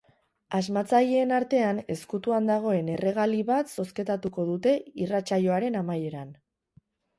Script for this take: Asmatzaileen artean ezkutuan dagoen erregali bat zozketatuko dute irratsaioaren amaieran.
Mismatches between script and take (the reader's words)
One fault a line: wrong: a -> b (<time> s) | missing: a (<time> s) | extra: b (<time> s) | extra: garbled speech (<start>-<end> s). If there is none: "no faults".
no faults